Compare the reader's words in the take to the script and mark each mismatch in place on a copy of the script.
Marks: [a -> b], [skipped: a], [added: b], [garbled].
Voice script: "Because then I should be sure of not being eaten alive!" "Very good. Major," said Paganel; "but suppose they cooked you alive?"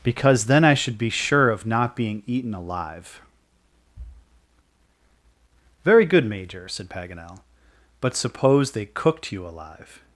"Because then I should be sure of not being eaten alive!" "Very good. Major," said Paganel; "but suppose they cooked you alive?"